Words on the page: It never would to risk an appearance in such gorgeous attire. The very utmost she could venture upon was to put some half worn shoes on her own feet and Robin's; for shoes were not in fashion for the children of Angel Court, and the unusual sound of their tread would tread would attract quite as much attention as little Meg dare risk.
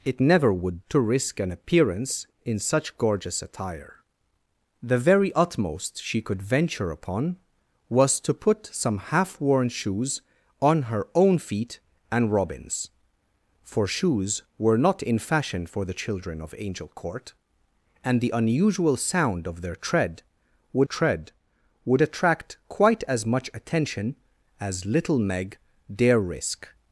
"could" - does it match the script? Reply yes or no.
yes